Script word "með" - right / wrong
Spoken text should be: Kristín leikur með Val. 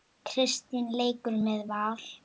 right